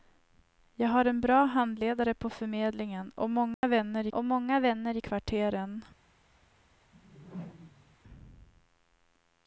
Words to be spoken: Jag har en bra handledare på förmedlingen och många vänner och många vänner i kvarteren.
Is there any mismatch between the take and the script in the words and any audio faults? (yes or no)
yes